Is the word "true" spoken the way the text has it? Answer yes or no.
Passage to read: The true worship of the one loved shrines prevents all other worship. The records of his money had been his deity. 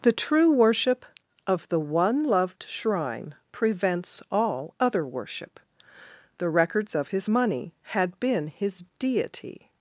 yes